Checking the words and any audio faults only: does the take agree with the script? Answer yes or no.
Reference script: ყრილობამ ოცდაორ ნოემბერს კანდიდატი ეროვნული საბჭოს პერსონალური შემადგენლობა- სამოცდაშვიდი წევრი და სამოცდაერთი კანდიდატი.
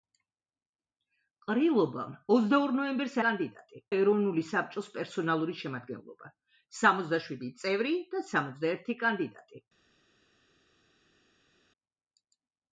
yes